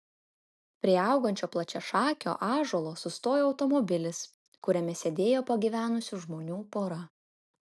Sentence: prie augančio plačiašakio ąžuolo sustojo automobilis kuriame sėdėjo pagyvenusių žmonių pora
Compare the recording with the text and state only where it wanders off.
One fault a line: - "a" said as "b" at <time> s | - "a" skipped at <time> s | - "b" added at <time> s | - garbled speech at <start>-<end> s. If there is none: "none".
none